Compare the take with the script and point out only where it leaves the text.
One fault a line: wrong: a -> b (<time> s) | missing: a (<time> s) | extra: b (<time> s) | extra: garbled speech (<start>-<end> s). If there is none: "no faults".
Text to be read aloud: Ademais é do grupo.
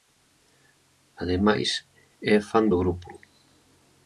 extra: fan (2.5 s)